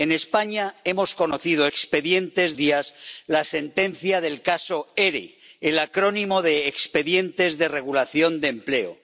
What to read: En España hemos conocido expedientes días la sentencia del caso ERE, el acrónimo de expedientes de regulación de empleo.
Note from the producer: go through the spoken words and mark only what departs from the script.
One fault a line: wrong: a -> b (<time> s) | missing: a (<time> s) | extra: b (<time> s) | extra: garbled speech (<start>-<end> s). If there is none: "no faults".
no faults